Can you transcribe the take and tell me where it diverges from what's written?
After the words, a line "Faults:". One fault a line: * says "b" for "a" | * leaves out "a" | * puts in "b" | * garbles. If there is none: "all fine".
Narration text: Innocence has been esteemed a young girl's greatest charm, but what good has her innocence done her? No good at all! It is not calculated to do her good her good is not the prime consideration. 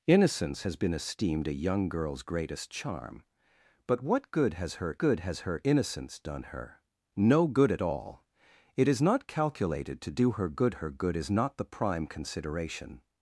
Innocence has been esteemed a young girl's greatest charm, but what good has her good has her innocence done her? No good at all! It is not calculated to do her good her good is not the prime consideration.
Faults:
* puts in "good has her"